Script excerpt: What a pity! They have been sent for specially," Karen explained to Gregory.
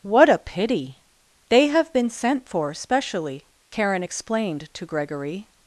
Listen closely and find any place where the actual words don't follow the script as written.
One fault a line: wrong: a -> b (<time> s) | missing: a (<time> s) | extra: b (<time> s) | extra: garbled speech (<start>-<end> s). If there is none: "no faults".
no faults